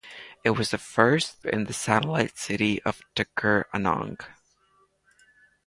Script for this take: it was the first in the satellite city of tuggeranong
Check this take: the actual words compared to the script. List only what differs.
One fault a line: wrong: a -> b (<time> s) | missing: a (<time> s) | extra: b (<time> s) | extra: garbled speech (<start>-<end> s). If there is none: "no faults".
no faults